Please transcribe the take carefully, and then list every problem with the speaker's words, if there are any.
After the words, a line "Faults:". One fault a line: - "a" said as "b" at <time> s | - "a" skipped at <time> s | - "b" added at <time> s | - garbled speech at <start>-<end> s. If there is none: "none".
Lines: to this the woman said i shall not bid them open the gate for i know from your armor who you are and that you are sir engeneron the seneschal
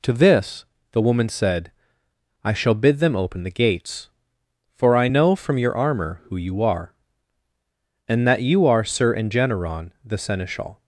to this the woman said i shall bid them open the gates for i know from your armor who you are and that you are sir engeneron the seneschal
Faults:
- "not" skipped at 2.7 s
- "gate" said as "gates" at 3.5 s